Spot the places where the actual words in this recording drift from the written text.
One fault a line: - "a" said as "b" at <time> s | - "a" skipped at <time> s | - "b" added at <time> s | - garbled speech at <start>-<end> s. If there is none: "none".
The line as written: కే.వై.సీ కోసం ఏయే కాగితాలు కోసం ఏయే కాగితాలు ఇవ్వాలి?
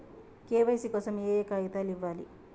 - "కోసం ఏయే కాగితాలు" skipped at 1.9 s